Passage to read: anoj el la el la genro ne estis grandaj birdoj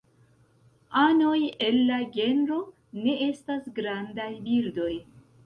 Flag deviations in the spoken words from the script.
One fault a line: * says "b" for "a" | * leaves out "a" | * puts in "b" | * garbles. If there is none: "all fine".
* leaves out "el la"
* says "estas" for "estis"